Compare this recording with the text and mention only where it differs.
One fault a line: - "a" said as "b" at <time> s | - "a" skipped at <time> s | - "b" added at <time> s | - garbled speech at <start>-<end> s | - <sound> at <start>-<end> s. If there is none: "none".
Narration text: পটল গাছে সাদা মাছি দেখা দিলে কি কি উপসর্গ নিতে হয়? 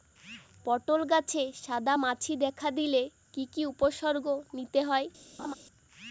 - laugh at 5.4-5.5 s